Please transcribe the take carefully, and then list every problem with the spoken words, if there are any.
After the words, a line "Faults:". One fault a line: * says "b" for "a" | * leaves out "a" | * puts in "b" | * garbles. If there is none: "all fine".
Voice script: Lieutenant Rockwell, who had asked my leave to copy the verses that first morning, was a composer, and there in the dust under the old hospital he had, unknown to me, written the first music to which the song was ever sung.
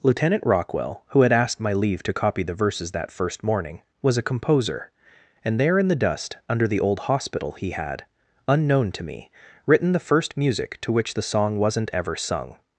Lieutenant Rockwell, who had asked my leave to copy the verses that first morning, was a composer, and there in the dust under the old hospital he had, unknown to me, written the first music to which the song wasn't ever sung.
Faults:
* says "wasn't" for "was"